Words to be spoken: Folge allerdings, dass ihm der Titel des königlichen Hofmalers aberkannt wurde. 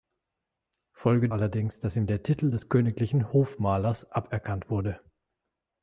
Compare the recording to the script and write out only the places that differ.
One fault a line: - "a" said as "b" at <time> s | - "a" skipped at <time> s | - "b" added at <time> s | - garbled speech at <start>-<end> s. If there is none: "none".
none